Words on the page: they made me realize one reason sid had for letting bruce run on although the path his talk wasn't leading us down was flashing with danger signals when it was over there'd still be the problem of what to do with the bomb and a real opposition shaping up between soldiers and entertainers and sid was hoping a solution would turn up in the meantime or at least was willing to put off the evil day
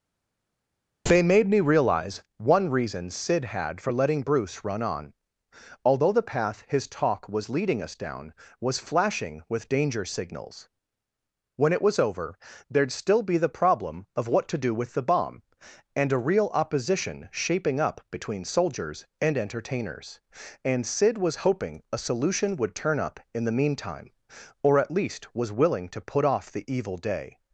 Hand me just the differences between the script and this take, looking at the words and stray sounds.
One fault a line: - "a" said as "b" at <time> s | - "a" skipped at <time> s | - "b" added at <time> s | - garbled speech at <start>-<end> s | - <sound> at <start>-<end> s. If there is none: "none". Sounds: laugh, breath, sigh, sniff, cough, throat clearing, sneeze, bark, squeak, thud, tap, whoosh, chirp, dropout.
- "wasn't" said as "was" at 7.3 s